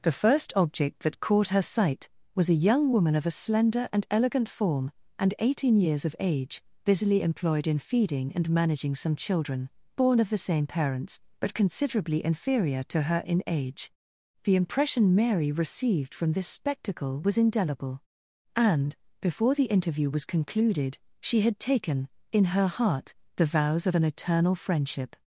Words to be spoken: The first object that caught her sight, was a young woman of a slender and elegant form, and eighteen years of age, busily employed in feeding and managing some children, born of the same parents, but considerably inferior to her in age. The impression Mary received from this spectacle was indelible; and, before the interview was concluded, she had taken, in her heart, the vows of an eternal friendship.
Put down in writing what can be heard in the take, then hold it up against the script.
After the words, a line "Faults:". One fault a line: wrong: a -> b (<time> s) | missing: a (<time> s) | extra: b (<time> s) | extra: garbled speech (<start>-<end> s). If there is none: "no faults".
The first object that caught her sight, was a young woman of a slender and elegant form, and eighteen years of age, busily employed in feeding and managing some children, born of the same parents, but considerably inferior to her in age. The impression Mary received from this spectacle was indelible; and, before the interview was concluded, she had taken, in her heart, the vows of an eternal friendship.
Faults:
no faults